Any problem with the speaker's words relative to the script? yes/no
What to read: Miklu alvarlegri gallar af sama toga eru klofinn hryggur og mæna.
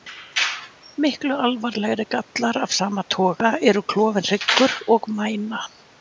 no